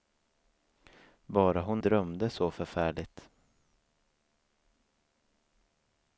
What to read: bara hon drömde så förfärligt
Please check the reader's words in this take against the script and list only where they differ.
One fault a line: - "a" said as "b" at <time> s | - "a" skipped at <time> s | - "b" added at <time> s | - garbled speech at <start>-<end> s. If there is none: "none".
none